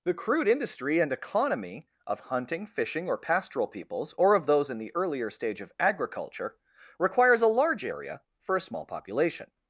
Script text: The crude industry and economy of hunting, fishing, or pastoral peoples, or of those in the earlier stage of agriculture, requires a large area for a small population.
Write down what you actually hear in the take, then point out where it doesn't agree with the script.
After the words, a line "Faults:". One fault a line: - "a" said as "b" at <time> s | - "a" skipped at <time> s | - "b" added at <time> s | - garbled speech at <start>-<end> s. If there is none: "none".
The crude industry and economy of hunting, fishing, or pastoral peoples, or of those in the earlier stage of agriculture, requires a large area for a small population.
Faults:
none